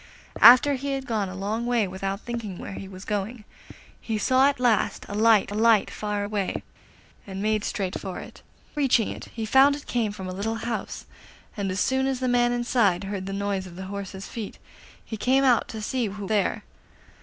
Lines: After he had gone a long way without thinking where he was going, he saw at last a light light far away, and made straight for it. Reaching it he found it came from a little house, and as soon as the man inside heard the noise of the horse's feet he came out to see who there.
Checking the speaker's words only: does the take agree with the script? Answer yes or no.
yes